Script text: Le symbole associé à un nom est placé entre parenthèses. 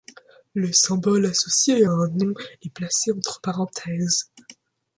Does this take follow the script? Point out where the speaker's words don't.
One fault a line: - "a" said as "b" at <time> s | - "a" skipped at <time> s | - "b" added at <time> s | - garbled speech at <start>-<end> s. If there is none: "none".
none